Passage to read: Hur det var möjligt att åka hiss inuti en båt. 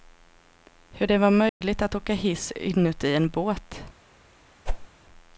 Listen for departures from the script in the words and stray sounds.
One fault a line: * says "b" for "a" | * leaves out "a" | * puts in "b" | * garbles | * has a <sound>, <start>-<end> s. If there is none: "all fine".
* has a dropout, 1.5-1.6 s
* has a whoosh, 4.7-4.9 s